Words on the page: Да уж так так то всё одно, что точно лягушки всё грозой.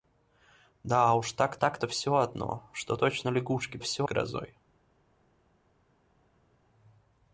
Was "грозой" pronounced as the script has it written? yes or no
yes